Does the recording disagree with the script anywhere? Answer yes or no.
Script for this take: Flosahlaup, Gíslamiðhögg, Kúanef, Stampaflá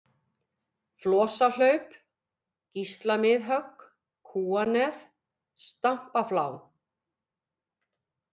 no